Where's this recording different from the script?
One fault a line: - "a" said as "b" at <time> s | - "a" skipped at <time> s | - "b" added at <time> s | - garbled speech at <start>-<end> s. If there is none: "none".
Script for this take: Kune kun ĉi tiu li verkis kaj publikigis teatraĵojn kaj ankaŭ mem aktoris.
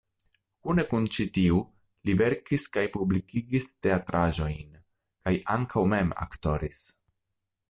none